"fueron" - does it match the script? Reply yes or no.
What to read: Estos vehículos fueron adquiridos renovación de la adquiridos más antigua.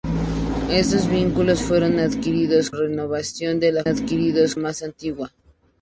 yes